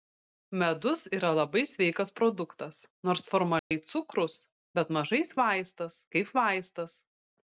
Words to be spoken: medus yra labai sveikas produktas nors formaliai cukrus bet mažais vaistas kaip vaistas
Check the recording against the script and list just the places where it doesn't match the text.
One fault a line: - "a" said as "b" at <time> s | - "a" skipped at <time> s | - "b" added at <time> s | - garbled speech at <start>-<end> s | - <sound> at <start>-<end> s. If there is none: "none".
- dropout at 3.6-3.7 s